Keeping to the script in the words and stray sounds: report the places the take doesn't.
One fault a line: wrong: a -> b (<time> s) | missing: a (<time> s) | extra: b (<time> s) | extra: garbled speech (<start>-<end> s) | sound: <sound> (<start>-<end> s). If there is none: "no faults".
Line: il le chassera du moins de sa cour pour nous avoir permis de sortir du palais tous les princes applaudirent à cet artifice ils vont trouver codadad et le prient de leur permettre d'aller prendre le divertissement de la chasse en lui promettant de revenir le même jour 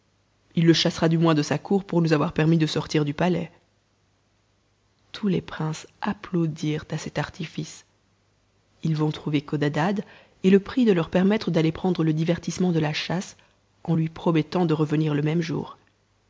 no faults